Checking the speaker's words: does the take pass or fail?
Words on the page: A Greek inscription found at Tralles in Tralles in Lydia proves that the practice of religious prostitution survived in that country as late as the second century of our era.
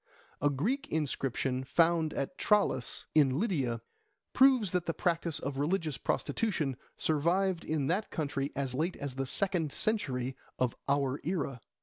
fail